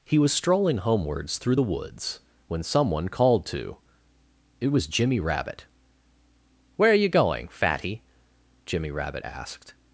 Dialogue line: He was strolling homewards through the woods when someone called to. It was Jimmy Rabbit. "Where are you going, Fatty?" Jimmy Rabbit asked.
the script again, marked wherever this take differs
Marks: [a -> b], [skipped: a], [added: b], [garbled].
He was strolling homewards through the woods when someone called to. It was Jimmy Rabbit. "Where are you going, Fatty?" Jimmy Rabbit asked.